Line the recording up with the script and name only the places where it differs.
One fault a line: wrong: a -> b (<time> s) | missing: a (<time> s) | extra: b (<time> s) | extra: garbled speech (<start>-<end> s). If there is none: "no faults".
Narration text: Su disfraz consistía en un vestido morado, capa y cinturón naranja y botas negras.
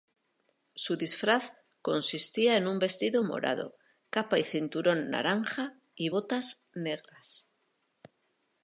no faults